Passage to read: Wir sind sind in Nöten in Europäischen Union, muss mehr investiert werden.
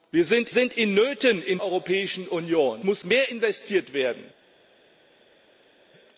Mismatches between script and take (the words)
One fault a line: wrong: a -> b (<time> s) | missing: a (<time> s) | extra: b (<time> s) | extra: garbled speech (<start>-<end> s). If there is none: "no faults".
no faults